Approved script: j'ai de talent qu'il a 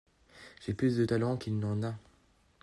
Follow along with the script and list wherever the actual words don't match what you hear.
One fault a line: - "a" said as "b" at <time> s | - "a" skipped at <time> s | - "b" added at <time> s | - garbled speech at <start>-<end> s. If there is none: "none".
- "plus" added at 0.7 s
- "n'en" added at 1.6 s